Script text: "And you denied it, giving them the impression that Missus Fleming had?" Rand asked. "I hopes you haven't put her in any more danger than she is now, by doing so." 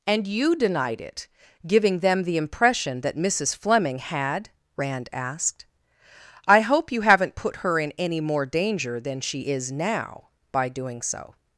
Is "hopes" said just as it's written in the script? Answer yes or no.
no